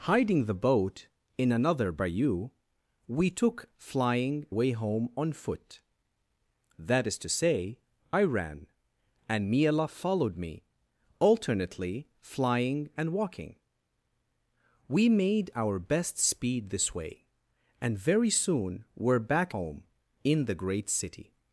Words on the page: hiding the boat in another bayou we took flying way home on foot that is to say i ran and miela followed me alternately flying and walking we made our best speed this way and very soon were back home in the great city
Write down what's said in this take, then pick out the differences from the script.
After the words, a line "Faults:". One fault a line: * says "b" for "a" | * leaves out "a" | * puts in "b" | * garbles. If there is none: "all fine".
hiding the boat in another bayou we took flying way home on foot that is to say i ran and miela followed me alternately flying and walking we made our best speed this way and very soon were back home in the great city
Faults:
all fine